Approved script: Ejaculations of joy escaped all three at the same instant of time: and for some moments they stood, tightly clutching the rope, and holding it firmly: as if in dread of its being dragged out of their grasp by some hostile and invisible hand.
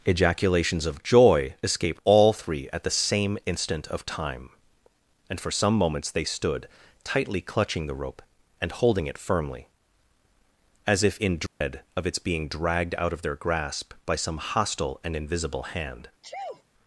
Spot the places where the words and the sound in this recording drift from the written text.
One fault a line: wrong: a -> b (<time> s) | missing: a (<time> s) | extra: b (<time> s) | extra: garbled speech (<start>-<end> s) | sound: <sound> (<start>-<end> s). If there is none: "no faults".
sound: dropout (11.5-11.6 s)
sound: sneeze (16.2-16.6 s)